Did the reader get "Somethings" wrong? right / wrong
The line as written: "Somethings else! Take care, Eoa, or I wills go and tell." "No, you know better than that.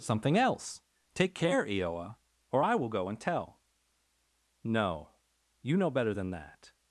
wrong